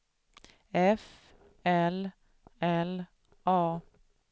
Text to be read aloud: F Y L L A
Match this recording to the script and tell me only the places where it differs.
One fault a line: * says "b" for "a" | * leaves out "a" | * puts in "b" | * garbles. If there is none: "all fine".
* leaves out "Y"